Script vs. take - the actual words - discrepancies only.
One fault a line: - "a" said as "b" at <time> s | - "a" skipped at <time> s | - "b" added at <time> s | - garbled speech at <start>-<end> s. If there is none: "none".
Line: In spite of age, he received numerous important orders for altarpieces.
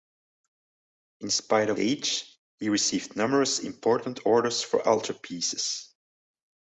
none